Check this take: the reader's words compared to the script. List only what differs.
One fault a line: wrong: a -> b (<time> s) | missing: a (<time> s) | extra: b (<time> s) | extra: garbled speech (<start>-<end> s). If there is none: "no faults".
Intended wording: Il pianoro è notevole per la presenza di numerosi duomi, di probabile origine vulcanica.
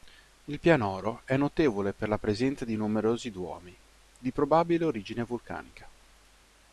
no faults